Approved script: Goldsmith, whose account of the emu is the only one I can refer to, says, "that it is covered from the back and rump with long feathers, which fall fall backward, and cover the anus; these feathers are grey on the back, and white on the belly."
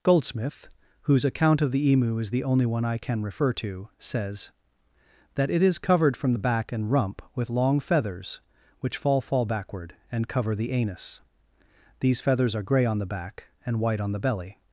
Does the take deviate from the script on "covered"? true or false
false